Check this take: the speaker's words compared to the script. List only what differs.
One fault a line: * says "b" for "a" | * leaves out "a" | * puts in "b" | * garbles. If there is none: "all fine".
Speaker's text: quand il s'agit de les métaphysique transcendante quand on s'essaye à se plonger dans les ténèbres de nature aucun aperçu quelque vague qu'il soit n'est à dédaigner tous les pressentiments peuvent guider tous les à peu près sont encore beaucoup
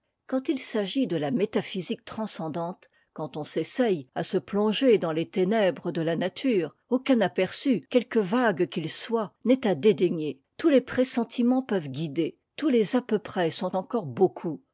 * says "la" for "les"
* puts in "la"